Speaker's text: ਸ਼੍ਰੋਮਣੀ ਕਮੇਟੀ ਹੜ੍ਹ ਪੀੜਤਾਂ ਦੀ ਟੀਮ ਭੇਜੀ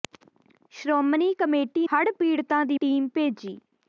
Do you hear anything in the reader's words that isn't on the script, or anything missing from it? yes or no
no